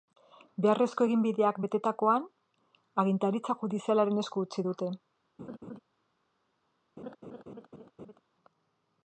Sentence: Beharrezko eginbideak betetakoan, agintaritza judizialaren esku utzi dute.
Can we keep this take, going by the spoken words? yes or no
yes